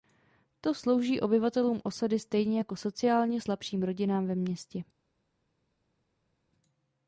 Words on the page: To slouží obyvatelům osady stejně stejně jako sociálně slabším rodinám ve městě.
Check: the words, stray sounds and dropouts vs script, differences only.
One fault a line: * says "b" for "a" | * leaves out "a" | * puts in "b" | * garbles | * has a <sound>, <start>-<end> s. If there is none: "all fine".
* leaves out "stejně"